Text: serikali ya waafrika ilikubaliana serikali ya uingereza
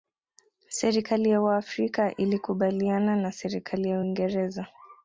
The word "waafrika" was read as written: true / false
true